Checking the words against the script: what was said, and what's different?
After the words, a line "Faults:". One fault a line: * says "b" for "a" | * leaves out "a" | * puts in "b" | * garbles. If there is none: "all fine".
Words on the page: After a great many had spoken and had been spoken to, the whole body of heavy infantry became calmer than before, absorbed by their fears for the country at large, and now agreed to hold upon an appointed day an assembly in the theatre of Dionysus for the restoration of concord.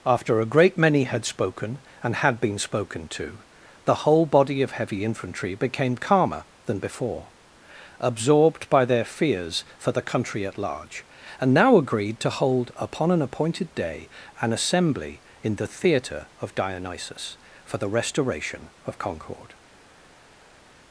After a great many had spoken and had been spoken to, the whole body of heavy infantry became calmer than before, absorbed by their fears for the country at large, and now agreed to hold upon an appointed day an assembly in the theatre of Dionysus for the restoration of concord.
Faults:
all fine